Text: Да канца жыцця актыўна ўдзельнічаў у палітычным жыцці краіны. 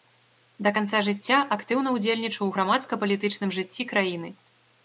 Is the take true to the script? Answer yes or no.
no